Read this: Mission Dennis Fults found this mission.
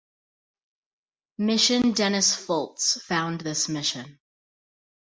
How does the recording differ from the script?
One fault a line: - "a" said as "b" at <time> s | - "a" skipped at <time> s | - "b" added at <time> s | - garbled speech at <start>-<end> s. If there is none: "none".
none